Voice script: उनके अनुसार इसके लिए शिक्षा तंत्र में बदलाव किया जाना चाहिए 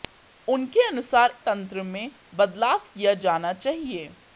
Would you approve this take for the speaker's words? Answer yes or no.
no